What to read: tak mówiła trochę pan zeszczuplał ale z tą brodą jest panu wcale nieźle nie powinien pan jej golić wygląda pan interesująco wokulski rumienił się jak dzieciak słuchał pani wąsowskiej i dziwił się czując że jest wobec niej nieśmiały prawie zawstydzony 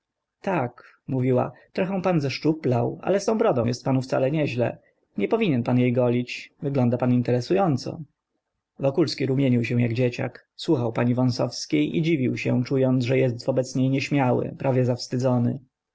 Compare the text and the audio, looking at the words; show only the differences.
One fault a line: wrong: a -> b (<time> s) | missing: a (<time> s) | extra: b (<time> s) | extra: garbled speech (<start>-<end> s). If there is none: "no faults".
no faults